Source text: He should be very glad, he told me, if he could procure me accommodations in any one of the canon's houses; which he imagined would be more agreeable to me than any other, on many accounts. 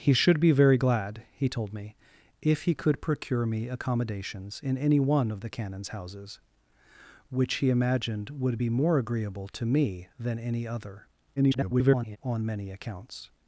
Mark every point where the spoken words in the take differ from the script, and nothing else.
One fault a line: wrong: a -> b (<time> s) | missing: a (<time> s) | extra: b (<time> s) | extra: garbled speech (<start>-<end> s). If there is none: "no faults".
extra: garbled speech (11.4-12.2 s)